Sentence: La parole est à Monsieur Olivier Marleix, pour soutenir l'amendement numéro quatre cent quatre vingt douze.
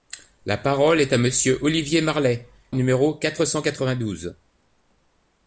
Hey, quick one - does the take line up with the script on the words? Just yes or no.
no